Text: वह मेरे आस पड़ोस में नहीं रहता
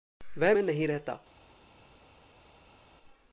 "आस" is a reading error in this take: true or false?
true